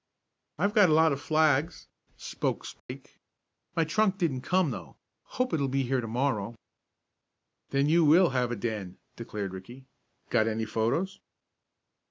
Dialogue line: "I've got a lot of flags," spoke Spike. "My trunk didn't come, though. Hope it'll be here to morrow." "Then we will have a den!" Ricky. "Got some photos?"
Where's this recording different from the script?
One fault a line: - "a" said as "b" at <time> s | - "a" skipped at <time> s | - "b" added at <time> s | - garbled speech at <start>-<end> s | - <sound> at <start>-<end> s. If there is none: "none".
- dropout at 2.8-2.9 s
- "we" said as "you" at 7.9 s
- "declared" added at 9.2 s
- "some" said as "any" at 10.5 s